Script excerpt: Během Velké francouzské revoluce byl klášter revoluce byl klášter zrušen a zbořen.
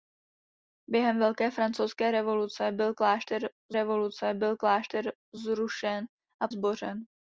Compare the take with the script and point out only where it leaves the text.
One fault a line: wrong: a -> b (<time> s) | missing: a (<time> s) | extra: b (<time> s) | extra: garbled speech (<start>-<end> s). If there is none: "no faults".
no faults